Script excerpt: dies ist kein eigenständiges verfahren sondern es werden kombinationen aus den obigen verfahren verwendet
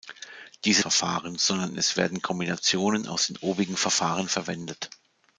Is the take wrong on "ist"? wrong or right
wrong